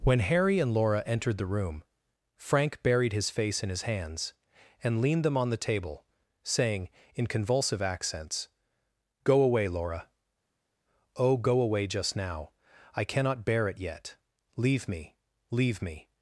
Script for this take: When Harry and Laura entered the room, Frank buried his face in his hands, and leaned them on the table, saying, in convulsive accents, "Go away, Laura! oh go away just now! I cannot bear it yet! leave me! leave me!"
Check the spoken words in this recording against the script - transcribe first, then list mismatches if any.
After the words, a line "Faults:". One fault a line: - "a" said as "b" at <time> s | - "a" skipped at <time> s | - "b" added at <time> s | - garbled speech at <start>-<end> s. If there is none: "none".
When Harry and Laura entered the room, Frank buried his face in his hands, and leaned them on the table, saying, in convulsive accents, "Go away, Laura! oh go away just now! I cannot bear it yet! leave me! leave me!"
Faults:
none